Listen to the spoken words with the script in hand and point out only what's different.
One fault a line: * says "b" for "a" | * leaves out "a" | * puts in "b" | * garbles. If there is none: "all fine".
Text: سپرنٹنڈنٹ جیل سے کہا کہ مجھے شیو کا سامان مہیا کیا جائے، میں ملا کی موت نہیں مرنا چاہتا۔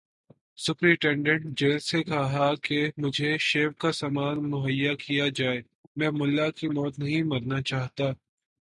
all fine